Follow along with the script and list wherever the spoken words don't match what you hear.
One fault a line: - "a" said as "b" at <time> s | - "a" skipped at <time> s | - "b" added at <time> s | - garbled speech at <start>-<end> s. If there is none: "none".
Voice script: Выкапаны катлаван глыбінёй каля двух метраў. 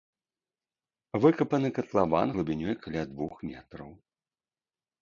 none